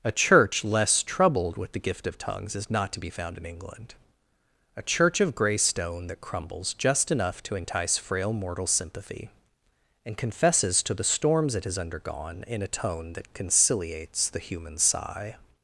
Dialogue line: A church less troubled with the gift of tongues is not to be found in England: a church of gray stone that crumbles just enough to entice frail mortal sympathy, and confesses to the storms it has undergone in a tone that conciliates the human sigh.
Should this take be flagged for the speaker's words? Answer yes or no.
no